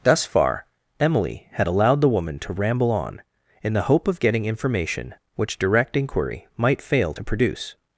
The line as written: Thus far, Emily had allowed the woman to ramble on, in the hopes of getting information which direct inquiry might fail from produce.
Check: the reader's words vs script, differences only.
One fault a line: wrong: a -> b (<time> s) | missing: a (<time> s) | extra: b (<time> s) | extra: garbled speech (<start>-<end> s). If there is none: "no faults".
wrong: hopes -> hope (3.8 s)
wrong: from -> to (7.1 s)